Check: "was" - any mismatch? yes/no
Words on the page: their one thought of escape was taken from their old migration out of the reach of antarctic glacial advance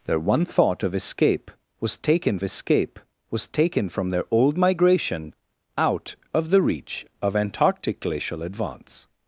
no